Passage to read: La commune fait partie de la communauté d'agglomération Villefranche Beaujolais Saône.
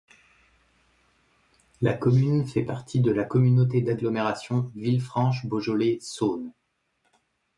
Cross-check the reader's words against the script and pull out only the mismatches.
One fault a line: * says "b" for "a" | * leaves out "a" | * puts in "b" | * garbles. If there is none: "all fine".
all fine